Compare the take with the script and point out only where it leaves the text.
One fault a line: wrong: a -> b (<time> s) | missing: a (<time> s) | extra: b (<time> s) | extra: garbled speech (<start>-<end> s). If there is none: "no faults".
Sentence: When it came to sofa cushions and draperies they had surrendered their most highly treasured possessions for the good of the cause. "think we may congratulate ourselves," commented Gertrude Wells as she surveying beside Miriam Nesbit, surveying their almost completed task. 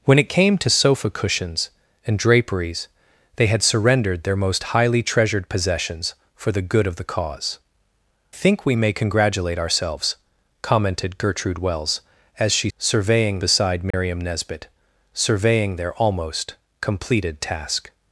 no faults